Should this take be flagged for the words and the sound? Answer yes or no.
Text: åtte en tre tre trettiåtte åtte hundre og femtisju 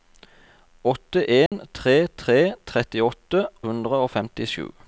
yes